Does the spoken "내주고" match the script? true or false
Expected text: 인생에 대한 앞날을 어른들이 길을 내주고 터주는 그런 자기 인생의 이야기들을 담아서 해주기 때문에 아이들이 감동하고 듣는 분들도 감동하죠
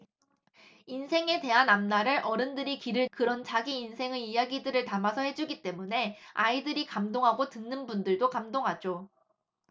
false